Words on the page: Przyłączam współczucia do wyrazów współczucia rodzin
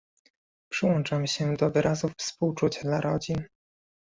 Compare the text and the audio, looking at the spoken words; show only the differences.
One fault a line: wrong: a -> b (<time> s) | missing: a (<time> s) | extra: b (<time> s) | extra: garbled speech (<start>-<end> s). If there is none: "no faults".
wrong: współczucia -> się (1.3 s)
extra: dla (2.8 s)